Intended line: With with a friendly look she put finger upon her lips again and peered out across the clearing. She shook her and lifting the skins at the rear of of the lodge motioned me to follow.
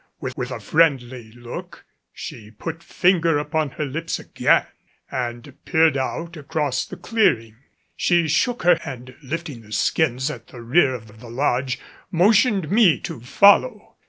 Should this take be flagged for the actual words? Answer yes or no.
no